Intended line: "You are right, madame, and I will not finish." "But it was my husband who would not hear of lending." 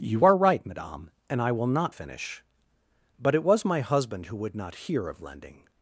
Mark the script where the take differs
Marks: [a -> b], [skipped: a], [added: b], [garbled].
"You are right, madame, and I will not finish." "But it was my husband who would not hear of lending."